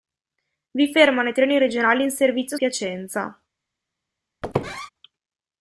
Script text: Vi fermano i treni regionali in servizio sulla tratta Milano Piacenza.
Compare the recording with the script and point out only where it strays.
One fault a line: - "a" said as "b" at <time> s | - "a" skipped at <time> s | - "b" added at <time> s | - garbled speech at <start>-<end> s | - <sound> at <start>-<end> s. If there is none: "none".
- "sulla tratta Milano" skipped at 2.6 s
- squeak at 4.4-4.9 s